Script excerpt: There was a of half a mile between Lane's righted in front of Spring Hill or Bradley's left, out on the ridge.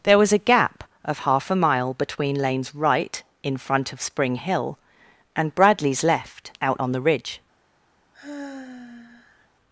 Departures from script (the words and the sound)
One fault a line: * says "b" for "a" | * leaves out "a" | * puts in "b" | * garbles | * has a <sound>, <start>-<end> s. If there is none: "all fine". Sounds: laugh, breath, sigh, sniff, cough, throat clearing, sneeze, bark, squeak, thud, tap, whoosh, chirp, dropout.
* puts in "gap"
* says "right" for "righted"
* says "and" for "or"
* has a sigh, 8.1-9.5 s